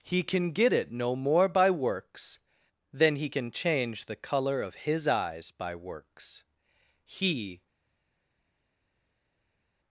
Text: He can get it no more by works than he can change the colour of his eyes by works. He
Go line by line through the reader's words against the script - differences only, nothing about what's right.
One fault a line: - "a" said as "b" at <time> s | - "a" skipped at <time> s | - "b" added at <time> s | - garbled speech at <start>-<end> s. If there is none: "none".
none